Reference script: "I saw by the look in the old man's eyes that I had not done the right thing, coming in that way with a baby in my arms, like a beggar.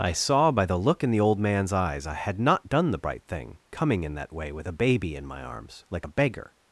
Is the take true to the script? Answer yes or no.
no